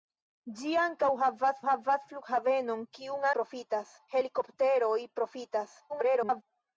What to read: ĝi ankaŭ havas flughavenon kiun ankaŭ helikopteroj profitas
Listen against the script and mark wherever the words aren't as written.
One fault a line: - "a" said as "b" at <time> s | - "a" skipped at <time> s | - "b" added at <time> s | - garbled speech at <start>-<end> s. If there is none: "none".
- "havas" added at 1.7 s
- "ankaŭ" said as "profitas" at 3.4 s
- garbled speech at 5.9-6.4 s